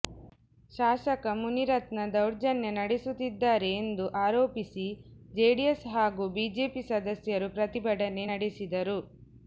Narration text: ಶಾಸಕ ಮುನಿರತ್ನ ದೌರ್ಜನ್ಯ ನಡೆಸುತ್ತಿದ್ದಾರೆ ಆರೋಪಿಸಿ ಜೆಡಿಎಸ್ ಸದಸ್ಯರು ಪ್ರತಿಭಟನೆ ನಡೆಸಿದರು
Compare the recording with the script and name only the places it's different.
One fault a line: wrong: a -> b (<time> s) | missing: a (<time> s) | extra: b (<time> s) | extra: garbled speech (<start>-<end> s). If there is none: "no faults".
extra: ಎಂದು (3.8 s)
extra: ಹಾಗೂ ಬಿಜೆಪಿ (5.9 s)